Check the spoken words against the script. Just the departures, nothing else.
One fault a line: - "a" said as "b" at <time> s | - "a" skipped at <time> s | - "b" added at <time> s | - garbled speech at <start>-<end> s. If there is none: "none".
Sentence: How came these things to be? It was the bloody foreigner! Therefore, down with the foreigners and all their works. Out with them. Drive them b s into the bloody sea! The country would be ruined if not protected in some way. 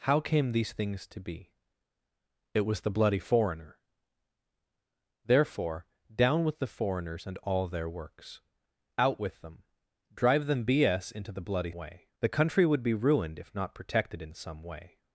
- "sea" said as "way" at 11.7 s